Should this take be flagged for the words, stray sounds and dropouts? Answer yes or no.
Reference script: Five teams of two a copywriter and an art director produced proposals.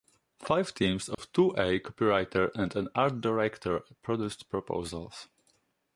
yes